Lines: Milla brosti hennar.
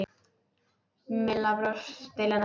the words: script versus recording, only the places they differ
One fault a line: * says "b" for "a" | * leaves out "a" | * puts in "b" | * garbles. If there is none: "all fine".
all fine